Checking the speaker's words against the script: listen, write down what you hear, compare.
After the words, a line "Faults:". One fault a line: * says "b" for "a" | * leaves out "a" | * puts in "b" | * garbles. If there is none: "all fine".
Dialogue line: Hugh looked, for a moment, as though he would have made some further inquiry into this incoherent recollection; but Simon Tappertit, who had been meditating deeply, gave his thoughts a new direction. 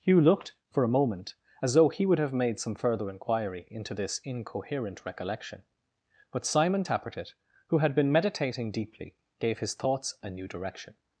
Hugh looked, for a moment, as though he would have made some further inquiry into this incoherent recollection; but Simon Tappertit, who had been meditating deeply, gave his thoughts a new direction.
Faults:
all fine